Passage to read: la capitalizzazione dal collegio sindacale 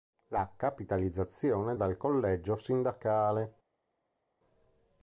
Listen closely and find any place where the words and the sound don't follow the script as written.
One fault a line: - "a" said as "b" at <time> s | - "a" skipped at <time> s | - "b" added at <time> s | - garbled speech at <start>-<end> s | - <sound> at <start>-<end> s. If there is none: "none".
none